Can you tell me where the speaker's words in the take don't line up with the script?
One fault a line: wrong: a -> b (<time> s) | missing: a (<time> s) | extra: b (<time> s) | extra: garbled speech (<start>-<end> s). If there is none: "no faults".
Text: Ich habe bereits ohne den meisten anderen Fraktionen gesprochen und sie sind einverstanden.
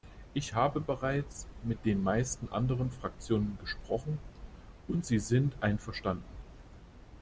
wrong: ohne -> mit (1.6 s)